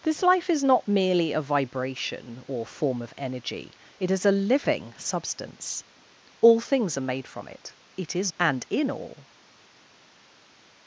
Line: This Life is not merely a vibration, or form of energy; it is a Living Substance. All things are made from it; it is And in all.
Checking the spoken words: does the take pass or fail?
pass